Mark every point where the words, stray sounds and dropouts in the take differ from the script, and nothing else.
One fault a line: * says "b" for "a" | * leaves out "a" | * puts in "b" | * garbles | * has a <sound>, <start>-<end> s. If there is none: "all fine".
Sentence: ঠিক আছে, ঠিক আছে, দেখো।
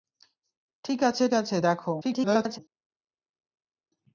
* leaves out "ঠিক"
* garbles